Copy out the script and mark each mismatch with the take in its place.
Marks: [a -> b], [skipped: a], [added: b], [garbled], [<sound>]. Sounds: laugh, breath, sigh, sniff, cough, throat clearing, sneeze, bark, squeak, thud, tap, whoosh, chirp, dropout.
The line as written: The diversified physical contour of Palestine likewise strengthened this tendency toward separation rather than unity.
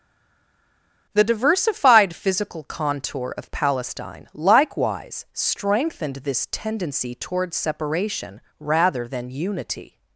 The diversified physical contour of Palestine likewise strengthened this tendency toward separation rather than unity.